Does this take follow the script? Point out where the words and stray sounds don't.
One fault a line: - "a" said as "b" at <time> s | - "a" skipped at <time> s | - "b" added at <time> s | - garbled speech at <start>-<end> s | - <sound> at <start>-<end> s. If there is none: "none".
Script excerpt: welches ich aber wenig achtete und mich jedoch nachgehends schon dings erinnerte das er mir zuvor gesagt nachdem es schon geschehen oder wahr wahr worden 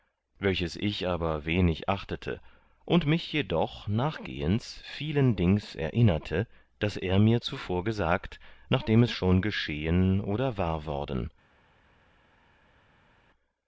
- "schon" said as "vielen" at 4.8 s
- "wahr" skipped at 10.8 s